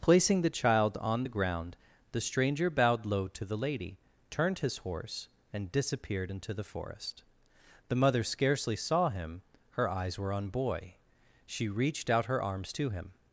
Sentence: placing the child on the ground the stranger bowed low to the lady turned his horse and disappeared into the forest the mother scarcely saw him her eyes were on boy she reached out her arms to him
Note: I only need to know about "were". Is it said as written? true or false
true